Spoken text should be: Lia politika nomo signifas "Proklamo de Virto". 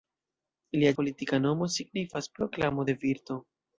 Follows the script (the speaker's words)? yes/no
yes